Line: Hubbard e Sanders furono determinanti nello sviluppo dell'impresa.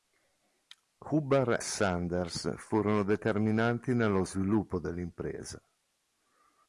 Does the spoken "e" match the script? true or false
false